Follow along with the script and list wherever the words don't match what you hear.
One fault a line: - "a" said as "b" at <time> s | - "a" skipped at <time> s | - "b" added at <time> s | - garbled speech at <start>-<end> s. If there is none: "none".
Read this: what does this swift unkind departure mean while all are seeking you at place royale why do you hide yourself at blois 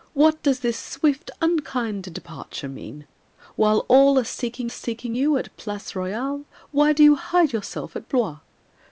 - "seeking" added at 4.7 s